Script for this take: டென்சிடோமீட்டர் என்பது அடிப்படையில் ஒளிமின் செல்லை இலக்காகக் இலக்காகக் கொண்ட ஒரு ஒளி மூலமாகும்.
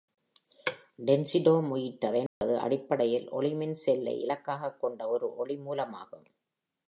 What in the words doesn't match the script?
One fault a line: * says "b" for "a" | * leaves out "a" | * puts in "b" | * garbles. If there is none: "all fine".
* leaves out "இலக்காகக்"